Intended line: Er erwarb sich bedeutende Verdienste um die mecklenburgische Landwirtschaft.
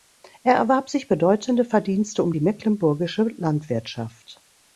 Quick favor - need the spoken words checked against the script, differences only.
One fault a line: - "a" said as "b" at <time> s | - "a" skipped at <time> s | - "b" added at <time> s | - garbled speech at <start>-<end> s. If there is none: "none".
none